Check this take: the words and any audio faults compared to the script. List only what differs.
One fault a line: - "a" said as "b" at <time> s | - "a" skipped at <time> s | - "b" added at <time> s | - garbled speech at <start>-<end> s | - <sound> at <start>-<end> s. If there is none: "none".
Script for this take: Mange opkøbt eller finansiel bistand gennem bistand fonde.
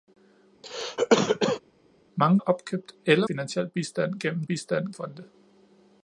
- cough at 0.6-1.6 s